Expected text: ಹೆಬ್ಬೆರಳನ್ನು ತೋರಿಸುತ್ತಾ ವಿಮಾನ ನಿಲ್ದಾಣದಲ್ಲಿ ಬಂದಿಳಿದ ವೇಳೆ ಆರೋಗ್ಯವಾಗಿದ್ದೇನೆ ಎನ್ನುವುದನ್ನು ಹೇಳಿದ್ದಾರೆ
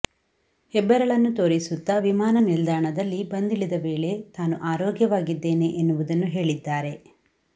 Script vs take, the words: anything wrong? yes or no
yes